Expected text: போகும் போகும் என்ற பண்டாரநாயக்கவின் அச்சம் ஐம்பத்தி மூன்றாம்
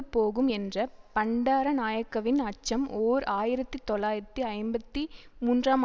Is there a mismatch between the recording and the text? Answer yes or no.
yes